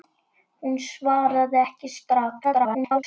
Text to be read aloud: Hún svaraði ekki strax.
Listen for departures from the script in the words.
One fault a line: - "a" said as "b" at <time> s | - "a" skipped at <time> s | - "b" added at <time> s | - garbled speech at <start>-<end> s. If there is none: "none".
- garbled speech at 2.4-3.0 s